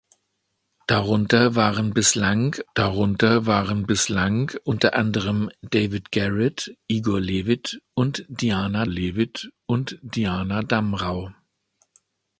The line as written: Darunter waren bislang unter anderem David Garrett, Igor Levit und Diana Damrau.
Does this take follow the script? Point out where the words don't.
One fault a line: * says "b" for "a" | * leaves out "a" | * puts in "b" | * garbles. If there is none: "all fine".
* puts in "darunter waren bislang"
* puts in "Levit und Diana"